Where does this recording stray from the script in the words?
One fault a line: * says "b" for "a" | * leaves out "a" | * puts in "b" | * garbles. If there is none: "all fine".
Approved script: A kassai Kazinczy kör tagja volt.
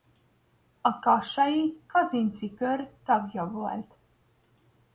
all fine